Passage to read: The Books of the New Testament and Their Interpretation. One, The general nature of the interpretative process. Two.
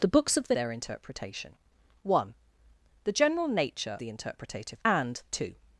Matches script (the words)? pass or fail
fail